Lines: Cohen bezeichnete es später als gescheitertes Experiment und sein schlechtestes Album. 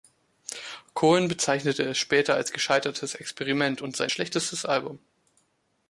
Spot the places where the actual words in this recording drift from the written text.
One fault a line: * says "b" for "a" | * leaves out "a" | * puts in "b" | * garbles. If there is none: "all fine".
all fine